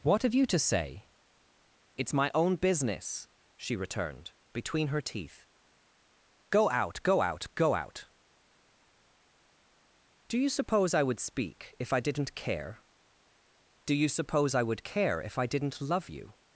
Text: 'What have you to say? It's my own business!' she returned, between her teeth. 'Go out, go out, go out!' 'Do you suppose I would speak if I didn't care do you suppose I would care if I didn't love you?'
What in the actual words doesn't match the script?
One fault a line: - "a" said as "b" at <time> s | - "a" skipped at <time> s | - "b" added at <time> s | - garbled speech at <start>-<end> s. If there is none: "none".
none